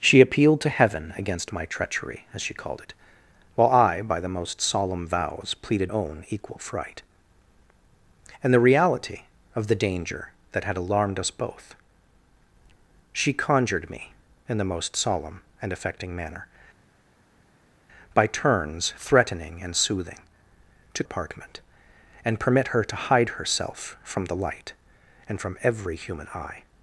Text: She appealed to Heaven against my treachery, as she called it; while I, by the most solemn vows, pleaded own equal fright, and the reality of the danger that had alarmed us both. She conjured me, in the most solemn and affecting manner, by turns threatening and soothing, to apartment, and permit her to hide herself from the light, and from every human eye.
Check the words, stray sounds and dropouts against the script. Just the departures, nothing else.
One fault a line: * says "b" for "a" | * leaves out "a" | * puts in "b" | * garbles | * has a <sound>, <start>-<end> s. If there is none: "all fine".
all fine